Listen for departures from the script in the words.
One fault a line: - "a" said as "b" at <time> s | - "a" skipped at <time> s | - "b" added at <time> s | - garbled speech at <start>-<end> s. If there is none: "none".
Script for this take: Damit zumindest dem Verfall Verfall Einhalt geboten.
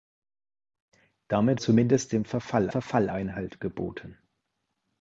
none